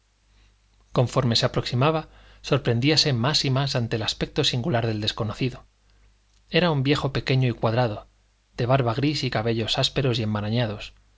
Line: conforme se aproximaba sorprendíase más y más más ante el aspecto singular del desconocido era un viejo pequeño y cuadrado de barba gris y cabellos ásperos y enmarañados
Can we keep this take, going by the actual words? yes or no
no